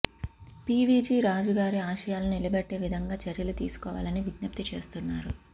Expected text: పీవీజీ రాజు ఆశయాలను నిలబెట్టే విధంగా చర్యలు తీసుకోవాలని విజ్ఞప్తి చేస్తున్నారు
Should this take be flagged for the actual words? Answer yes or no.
yes